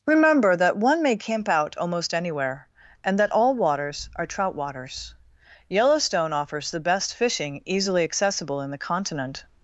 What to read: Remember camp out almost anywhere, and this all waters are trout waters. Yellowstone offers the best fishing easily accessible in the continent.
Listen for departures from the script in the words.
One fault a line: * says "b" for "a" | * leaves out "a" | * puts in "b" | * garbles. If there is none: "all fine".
* puts in "that one may"
* says "that" for "this"